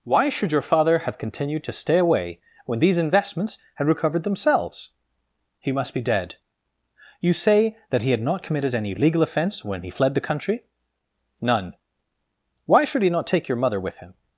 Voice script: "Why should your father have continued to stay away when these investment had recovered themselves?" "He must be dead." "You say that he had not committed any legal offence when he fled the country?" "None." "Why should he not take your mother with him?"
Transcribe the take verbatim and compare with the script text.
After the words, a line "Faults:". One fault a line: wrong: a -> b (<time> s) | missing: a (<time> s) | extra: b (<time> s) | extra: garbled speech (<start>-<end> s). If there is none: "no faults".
"Why should your father have continued to stay away when these investments had recovered themselves?" "He must be dead." "You say that he had not committed any legal offence when he fled the country?" "None." "Why should he not take your mother with him?"
Faults:
wrong: investment -> investments (3.0 s)